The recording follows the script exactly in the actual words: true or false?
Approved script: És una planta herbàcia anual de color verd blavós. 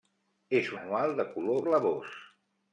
false